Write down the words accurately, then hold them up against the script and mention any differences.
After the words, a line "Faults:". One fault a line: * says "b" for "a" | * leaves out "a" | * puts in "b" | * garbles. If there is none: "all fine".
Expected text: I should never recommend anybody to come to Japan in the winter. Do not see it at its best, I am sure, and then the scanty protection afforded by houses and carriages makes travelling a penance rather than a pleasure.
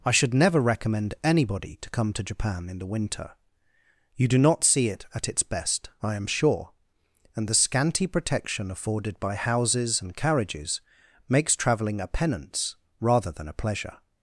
I should never recommend anybody to come to Japan in the winter. You do not see it at its best, I am sure, and the scanty protection afforded by houses and carriages makes travelling a penance rather than a pleasure.
Faults:
* puts in "You"
* leaves out "then"